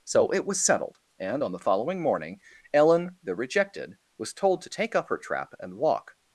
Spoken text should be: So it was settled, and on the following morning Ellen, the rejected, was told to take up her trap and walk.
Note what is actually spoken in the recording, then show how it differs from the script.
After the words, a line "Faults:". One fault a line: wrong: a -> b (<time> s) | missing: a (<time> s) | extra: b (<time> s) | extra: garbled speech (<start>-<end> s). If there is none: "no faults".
So it was settled, and on the following morning Ellen, the rejected, was told to take up her trap and walk.
Faults:
no faults